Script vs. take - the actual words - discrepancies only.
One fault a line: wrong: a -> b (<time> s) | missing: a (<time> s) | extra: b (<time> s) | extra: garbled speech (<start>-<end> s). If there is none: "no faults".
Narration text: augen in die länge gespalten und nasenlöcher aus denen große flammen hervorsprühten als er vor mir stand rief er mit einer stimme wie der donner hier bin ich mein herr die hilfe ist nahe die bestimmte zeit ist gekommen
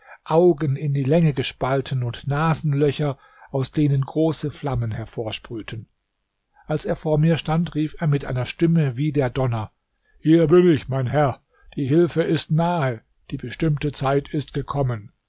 no faults